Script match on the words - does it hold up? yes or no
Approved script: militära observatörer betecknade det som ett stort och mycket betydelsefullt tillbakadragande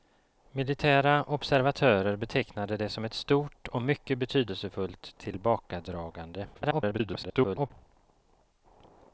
no